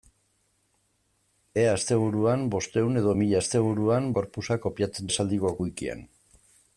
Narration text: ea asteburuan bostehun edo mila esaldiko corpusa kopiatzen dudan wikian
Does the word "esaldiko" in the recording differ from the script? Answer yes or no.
yes